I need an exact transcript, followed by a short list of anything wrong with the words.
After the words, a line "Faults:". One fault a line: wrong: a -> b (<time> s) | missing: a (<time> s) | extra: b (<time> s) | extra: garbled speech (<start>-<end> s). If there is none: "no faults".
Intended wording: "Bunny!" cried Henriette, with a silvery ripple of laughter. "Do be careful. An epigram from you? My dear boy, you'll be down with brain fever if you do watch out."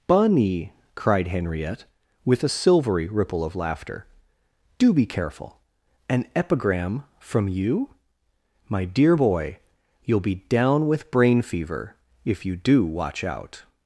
"Bunny!" cried Henriette, with a silvery ripple of laughter. "Do be careful. An epigram from you? My dear boy, you'll be down with brain fever if you do watch out."
Faults:
no faults